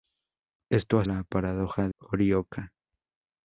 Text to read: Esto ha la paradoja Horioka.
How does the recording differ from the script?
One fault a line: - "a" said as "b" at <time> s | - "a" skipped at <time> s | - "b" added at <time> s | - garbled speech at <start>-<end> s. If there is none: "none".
none